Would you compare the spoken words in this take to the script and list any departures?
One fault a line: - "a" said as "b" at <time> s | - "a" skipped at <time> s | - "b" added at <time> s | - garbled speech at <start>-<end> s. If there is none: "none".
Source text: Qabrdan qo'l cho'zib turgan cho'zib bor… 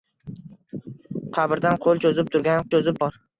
none